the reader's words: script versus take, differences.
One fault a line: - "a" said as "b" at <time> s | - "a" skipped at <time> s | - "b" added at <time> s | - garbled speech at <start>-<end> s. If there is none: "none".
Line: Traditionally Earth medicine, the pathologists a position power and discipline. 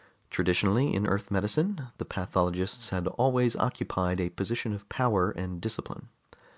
- "in" added at 0.9 s
- "had always occupied" added at 2.9 s
- "of" added at 4.7 s